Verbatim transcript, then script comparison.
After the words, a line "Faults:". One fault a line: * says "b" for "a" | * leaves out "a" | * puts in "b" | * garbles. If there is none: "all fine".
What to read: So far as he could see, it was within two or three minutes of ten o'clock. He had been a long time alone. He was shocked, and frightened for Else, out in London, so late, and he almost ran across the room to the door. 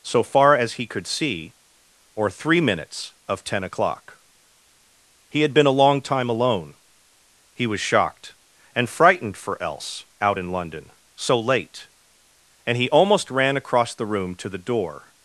So far as he could see, or three minutes of ten o'clock. He had been a long time alone. He was shocked, and frightened for Else, out in London, so late, and he almost ran across the room to the door.
Faults:
* leaves out "it was within two"